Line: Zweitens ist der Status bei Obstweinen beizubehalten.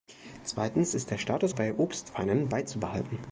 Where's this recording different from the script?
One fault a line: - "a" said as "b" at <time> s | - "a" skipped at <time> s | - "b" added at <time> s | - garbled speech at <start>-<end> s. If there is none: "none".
none